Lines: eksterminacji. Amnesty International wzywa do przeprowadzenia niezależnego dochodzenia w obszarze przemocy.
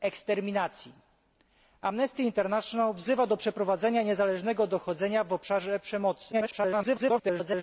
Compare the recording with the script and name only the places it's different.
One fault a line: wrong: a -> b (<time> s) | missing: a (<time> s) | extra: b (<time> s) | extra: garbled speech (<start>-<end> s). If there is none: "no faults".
extra: garbled speech (6.3-7.6 s)